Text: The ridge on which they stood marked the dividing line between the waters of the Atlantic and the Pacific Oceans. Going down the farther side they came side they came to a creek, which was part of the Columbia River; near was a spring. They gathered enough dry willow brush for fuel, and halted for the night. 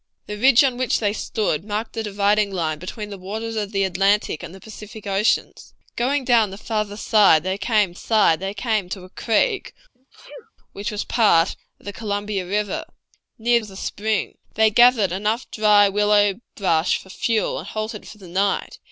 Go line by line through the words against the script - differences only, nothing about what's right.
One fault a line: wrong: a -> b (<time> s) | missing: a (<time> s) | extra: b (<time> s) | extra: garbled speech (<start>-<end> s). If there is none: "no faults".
no faults